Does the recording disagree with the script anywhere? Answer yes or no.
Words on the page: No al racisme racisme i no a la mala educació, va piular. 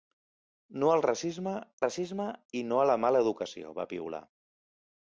no